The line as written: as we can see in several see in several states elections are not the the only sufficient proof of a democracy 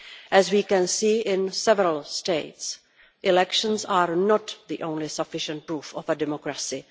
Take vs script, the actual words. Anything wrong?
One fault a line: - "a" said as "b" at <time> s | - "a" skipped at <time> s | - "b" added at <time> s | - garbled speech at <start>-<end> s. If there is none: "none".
- "see in several" skipped at 2.0 s
- "the" skipped at 4.8 s